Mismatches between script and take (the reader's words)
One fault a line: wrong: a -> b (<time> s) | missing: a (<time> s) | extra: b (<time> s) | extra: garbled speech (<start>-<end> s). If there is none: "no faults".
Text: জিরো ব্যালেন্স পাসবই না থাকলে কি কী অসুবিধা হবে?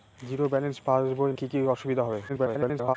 missing: না থাকলে (1.3 s)
extra: garbled speech (2.3-3.0 s)